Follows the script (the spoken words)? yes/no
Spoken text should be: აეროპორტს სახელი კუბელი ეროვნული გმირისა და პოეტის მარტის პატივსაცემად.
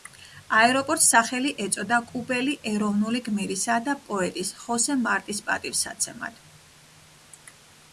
no